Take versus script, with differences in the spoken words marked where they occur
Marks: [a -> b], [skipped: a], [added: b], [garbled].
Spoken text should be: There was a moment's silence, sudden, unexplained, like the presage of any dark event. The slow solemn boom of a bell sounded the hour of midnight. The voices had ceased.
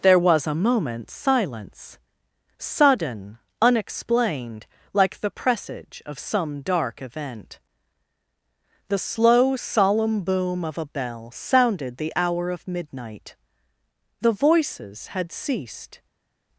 There was a moment's silence, sudden, unexplained, like the presage of [any -> some] dark event. The slow solemn boom of a bell sounded the hour of midnight. The voices had ceased.